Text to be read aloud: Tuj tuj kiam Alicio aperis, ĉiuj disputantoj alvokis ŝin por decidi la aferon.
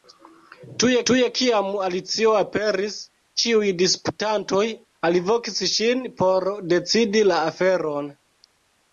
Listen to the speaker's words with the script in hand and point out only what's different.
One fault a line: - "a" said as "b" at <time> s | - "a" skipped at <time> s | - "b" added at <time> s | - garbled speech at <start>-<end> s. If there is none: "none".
none